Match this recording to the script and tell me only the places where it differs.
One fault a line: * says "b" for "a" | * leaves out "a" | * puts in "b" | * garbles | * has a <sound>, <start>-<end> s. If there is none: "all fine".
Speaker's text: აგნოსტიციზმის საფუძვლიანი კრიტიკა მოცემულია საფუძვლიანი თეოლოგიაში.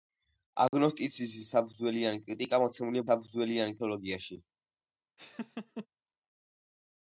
* has a dropout, 0.7-0.7 s
* has a laugh, 5.2-5.9 s